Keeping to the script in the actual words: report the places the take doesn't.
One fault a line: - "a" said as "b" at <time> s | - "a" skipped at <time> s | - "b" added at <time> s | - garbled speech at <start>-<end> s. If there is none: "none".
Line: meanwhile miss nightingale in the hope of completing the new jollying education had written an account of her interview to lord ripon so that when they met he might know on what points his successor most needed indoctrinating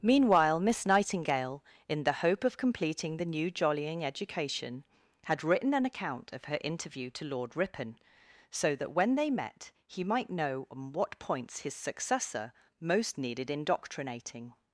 none